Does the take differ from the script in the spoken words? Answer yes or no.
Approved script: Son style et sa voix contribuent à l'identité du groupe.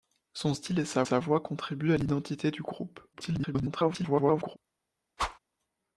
yes